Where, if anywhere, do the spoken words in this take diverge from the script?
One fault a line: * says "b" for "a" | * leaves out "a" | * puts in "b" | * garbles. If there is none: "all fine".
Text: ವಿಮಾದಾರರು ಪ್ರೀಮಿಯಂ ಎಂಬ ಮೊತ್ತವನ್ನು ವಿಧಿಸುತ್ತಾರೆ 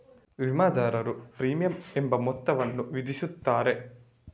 all fine